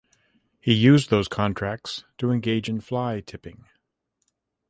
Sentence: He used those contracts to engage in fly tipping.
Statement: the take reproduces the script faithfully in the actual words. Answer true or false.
true